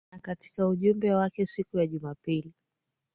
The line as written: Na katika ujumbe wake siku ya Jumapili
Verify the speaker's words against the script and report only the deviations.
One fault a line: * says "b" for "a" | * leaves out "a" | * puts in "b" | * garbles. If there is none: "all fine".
all fine